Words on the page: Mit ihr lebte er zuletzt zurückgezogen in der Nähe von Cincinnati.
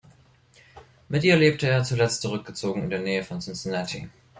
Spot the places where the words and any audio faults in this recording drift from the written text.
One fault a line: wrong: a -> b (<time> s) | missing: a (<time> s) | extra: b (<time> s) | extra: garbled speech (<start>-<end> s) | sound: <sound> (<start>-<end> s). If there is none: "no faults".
no faults